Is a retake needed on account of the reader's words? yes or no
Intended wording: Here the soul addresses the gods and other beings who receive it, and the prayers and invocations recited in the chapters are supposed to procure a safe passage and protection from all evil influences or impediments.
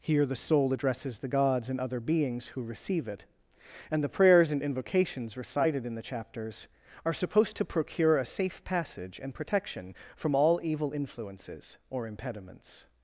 no